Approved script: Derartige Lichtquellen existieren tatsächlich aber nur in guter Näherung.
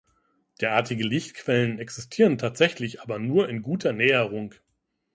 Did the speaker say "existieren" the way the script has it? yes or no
yes